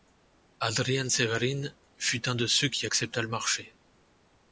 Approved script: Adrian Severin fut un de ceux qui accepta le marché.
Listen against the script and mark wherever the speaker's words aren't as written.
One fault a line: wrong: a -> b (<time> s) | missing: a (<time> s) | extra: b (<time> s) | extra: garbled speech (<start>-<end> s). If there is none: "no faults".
no faults